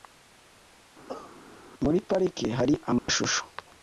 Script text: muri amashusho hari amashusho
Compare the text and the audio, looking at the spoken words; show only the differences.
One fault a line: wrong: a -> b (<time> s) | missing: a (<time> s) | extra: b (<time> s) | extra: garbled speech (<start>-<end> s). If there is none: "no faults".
wrong: amashusho -> parike (2.1 s)